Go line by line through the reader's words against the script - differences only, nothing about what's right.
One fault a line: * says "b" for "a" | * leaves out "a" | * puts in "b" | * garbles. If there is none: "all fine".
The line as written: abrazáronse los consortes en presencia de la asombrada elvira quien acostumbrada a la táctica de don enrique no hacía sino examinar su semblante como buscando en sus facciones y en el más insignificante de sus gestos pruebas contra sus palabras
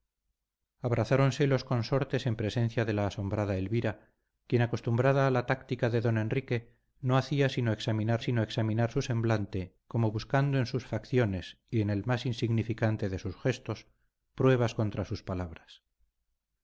* puts in "sino examinar"